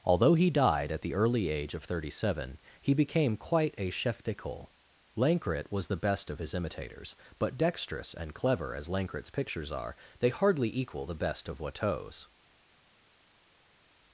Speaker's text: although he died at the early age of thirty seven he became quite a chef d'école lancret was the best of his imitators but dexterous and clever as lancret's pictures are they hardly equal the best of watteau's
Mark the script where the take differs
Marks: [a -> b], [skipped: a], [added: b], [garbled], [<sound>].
although he died at the early age of thirty seven he became quite a chef d'école lancret was the best of his imitators but dexterous and clever as lancret's pictures are they hardly equal the best of watteau's